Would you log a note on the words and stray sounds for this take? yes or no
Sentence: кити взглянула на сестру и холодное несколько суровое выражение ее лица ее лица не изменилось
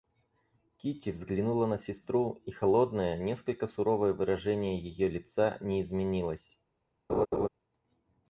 yes